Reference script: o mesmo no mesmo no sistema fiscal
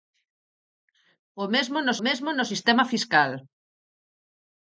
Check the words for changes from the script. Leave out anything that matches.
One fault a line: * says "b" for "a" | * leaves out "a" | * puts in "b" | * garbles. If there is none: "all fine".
all fine